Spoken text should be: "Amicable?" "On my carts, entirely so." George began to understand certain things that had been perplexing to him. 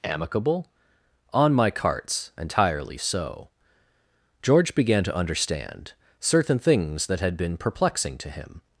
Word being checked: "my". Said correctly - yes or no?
yes